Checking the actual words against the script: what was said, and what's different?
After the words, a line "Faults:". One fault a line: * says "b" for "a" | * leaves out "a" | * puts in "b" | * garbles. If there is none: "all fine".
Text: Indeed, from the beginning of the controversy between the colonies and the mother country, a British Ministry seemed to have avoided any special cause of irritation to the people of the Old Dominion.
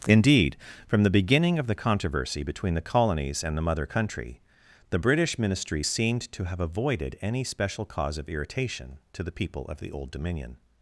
Indeed, from the beginning of the controversy between the colonies and the mother country, the British Ministry seemed to have avoided any special cause of irritation to the people of the Old Dominion.
Faults:
* says "the" for "a"